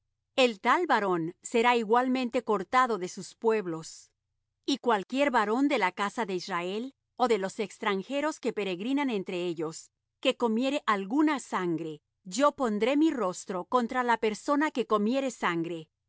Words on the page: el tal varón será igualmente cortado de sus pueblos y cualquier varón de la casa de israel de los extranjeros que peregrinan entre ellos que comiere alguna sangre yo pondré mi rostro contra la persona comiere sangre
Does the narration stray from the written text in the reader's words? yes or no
yes